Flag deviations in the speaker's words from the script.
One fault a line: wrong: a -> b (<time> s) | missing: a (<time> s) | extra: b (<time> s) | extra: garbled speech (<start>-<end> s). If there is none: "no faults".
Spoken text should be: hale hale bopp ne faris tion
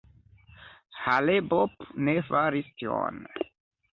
missing: hale (1.4 s)